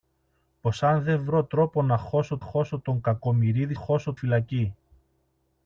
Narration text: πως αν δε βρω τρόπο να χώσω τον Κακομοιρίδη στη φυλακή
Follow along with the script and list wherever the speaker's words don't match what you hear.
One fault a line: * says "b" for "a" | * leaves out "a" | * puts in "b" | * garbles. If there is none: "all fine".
* puts in "χώσω"
* says "χώσω" for "στη"